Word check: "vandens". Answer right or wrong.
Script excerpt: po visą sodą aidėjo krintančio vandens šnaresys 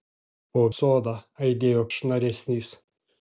wrong